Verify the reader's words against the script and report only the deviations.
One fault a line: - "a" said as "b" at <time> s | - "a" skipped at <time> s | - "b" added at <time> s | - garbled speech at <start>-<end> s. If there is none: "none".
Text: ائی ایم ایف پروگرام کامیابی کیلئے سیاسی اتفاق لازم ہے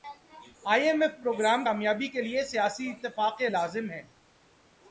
none